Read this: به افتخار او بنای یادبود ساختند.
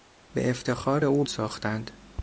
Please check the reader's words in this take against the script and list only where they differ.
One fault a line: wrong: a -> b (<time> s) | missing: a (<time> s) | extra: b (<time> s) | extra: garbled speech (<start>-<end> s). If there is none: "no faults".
missing: بنای یادبود (1.2 s)